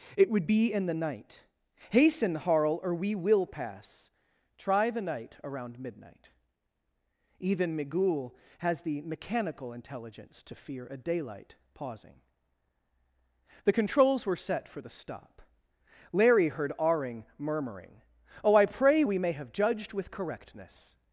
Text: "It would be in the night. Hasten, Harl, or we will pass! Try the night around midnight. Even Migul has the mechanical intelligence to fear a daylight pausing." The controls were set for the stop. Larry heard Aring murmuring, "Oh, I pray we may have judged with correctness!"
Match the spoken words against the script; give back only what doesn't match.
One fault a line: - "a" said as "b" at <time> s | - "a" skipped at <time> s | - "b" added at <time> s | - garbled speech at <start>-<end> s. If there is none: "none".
none